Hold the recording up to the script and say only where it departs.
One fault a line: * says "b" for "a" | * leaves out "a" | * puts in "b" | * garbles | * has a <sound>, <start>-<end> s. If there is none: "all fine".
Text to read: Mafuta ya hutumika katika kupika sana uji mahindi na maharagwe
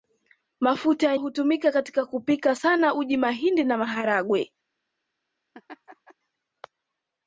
* has a laugh, 5.5-6.1 s